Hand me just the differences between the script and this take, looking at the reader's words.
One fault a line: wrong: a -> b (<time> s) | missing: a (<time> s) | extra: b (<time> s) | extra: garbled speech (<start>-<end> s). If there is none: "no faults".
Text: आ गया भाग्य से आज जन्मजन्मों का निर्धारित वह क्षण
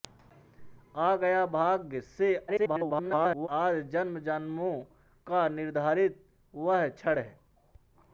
extra: garbled speech (2.5-3.5 s)